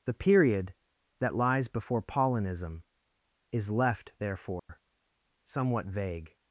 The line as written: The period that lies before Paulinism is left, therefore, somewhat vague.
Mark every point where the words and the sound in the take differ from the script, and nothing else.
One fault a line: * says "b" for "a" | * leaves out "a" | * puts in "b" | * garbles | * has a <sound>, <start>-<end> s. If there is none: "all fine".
* has a dropout, 4.6-4.7 s